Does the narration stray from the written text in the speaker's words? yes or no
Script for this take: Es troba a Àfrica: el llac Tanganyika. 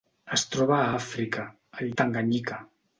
yes